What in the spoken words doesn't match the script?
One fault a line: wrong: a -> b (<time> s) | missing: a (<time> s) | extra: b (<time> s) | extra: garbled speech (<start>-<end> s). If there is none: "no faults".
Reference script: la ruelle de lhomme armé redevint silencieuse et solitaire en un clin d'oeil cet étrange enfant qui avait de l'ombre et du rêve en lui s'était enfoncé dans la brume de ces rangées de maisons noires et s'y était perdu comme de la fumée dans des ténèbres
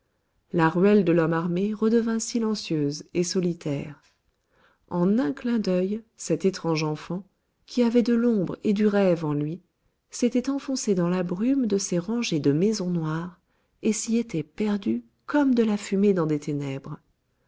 no faults